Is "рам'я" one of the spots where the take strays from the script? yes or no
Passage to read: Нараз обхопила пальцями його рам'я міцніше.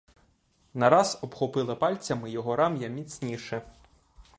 no